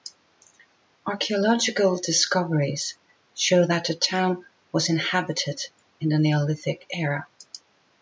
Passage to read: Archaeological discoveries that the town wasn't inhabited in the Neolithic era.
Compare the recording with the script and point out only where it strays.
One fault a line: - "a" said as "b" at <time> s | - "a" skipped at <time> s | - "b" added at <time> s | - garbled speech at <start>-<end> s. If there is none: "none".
- "show" added at 3.4 s
- "wasn't" said as "was" at 4.7 s